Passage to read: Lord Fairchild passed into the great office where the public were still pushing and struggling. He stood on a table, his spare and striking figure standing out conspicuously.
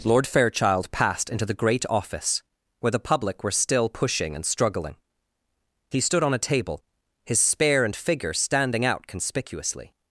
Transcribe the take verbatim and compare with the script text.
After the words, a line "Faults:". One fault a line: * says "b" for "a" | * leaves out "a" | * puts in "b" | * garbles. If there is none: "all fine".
Lord Fairchild passed into the great office where the public were still pushing and struggling. He stood on a table, his spare and figure standing out conspicuously.
Faults:
* leaves out "striking"